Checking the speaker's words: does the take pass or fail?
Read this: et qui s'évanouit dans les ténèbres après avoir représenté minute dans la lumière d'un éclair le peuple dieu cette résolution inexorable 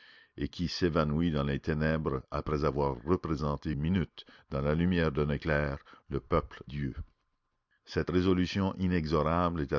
pass